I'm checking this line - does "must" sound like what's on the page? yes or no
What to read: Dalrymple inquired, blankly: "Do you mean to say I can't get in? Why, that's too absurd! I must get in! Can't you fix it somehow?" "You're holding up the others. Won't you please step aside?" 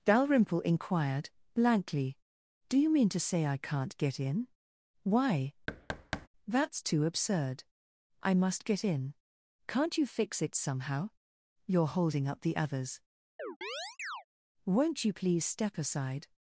yes